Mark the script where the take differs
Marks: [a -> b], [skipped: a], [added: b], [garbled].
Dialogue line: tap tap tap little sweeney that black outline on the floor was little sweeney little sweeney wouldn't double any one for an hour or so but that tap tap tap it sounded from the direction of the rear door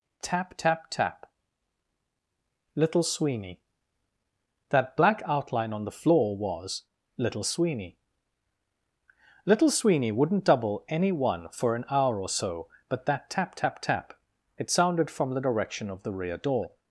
tap tap tap little sweeney that black outline on the floor was little sweeney little sweeney wouldn't double any one for an hour or so but that tap tap tap it sounded from the direction of the rear door